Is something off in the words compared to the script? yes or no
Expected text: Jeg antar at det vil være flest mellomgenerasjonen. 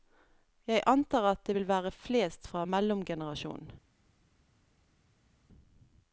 yes